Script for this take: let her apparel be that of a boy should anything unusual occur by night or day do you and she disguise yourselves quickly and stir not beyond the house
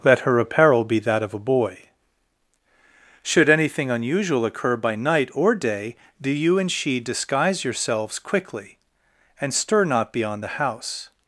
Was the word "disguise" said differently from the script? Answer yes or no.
no